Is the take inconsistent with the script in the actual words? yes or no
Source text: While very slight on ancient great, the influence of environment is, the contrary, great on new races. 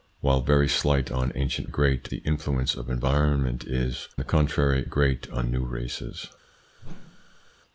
no